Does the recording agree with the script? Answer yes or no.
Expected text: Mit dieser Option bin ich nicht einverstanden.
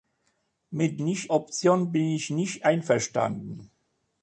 no